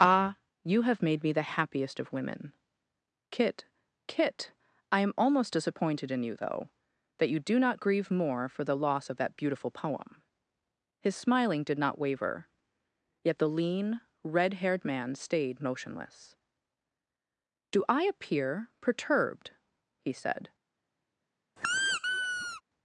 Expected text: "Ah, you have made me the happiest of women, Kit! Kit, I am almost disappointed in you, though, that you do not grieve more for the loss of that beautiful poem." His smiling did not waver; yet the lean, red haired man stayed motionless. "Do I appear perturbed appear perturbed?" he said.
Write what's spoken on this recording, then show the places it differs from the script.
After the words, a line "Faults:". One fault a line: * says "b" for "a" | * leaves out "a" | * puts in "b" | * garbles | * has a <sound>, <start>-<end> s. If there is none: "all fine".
"Ah, you have made me the happiest of women, Kit! Kit, I am almost disappointed in you, though, that you do not grieve more for the loss of that beautiful poem." His smiling did not waver; yet the lean, red haired man stayed motionless. "Do I appear perturbed?" he said.
Faults:
* leaves out "appear perturbed"
* has a squeak, 21.6-22.6 s